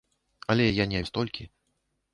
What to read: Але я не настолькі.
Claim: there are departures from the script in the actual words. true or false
false